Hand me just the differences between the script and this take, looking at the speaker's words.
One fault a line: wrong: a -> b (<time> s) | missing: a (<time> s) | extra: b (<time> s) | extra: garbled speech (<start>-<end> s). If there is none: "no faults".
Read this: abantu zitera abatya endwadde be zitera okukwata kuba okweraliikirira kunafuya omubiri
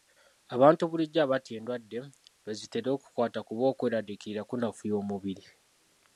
wrong: zitera -> bulijjo (0.9 s)